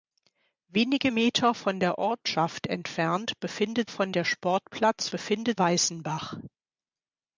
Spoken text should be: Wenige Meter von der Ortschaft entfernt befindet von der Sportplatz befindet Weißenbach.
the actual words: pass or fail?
pass